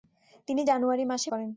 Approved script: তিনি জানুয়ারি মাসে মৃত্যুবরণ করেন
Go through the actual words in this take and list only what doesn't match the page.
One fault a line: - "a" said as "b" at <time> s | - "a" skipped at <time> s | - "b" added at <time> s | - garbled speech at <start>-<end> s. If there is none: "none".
- "মৃত্যুবরণ" skipped at 1.3 s